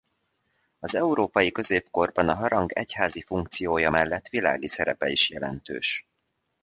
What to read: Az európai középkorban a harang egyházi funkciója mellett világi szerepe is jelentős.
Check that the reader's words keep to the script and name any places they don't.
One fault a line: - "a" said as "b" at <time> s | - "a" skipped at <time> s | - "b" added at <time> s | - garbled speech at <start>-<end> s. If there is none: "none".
none